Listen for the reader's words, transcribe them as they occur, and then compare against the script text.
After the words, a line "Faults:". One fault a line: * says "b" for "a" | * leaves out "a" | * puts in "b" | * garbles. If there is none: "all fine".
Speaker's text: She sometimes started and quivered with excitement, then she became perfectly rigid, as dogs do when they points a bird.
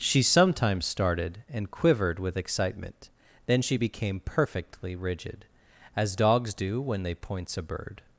She sometimes started and quivered with excitement, then she became perfectly rigid, as dogs do when they points a bird.
Faults:
all fine